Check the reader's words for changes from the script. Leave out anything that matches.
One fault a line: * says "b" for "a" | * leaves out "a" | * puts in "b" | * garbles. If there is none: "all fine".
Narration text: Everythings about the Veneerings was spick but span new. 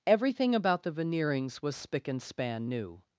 * says "Everything" for "Everythings"
* says "and" for "but"